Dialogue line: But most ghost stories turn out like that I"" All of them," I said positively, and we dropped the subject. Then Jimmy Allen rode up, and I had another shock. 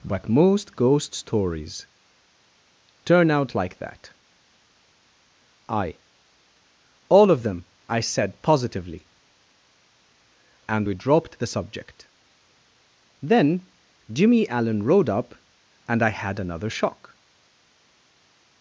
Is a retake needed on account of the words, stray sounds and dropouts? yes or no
no